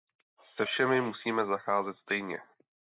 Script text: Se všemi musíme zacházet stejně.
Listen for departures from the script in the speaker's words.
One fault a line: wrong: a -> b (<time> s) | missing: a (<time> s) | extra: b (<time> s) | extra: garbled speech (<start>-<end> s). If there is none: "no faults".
no faults